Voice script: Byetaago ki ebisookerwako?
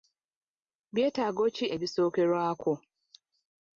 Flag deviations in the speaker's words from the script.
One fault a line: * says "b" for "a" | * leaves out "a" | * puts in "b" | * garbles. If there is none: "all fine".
all fine